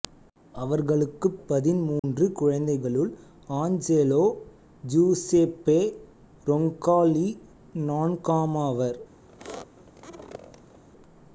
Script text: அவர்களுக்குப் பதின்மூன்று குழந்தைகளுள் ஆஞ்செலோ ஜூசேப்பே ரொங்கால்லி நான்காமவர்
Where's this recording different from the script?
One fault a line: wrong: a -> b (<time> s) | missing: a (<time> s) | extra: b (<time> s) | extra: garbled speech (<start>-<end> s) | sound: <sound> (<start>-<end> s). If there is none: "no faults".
sound: dropout (2.0-2.0 s)
sound: squeak (9.3-10.8 s)